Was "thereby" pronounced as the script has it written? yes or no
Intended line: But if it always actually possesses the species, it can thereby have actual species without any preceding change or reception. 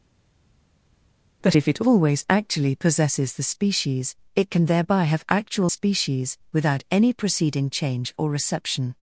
yes